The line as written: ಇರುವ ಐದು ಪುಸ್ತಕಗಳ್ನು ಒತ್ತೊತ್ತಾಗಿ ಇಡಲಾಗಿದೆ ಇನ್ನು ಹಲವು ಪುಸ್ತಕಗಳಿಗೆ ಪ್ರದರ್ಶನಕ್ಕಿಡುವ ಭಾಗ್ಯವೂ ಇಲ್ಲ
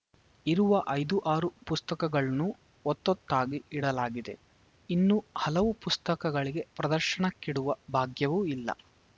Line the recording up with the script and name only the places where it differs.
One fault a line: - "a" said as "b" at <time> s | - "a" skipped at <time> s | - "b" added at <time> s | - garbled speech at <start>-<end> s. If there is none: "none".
- "ಆರು" added at 1.2 s